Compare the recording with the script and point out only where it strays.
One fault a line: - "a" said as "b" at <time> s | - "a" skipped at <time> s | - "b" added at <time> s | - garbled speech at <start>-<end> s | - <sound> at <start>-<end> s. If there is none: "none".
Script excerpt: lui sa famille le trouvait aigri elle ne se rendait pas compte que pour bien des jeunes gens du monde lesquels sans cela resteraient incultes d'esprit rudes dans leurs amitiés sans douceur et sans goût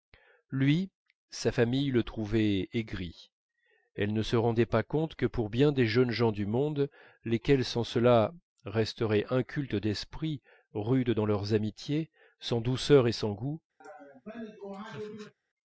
- laugh at 13.8-15.3 s